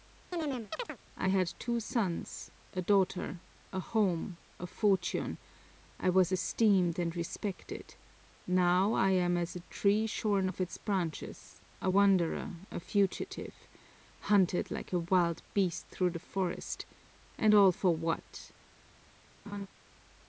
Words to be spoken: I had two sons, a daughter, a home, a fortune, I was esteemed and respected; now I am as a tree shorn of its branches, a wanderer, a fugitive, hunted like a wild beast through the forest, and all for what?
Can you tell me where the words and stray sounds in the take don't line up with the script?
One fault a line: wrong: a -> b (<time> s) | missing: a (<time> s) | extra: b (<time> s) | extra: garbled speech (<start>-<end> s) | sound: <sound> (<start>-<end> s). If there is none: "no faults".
sound: chirp (0.3-1.0 s)
sound: laugh (19.5-19.7 s)